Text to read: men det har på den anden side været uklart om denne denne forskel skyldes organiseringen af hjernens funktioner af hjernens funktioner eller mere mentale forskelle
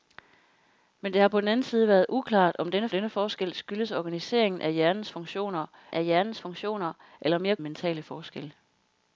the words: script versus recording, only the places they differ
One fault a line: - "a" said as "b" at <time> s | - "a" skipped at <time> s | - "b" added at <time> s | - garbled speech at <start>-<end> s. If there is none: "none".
none